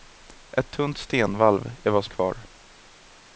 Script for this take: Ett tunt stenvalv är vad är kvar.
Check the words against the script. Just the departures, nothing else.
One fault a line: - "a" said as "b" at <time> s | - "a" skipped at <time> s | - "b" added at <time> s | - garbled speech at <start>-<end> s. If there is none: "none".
none